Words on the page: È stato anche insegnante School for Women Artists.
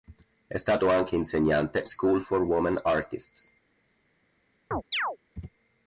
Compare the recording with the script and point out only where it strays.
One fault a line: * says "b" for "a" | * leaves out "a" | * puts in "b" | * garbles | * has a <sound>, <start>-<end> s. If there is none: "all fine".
* has a chirp, 4.7-5.2 s